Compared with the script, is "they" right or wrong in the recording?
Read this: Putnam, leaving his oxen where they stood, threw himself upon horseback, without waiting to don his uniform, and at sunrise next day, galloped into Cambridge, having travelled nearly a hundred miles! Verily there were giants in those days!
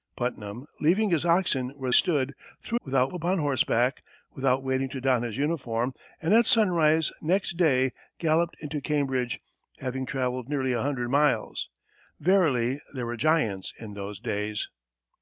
wrong